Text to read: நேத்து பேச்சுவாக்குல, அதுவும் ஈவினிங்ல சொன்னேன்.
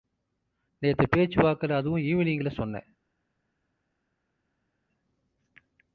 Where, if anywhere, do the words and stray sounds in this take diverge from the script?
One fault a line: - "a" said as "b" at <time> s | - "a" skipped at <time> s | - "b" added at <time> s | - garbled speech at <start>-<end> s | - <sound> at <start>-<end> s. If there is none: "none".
none